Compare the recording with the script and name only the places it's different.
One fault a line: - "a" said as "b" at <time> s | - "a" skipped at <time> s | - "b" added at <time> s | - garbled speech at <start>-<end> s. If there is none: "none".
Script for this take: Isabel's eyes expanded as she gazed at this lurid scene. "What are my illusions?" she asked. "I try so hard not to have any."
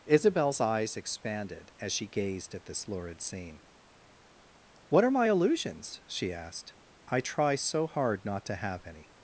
none